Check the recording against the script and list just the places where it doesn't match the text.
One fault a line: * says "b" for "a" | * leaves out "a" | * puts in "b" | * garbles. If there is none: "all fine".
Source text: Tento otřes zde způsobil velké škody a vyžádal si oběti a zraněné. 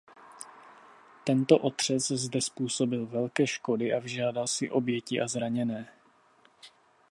all fine